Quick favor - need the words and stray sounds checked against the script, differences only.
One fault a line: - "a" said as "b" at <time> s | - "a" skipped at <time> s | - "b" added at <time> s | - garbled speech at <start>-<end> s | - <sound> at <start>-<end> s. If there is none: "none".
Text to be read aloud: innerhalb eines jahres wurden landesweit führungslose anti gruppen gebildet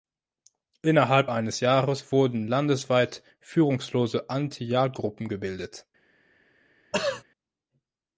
- "jagd" added at 4.6 s
- throat clearing at 6.9-7.2 s